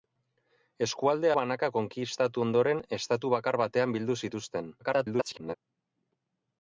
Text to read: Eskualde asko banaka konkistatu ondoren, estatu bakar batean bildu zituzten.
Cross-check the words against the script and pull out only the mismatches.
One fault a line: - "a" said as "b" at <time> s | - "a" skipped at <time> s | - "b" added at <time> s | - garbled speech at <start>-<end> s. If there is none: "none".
- "asko" skipped at 1.3 s
- garbled speech at 4.8-5.5 s